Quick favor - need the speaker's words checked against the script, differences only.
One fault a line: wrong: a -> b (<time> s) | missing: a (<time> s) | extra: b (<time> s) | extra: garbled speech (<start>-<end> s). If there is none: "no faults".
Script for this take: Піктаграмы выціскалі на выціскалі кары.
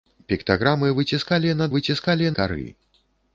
no faults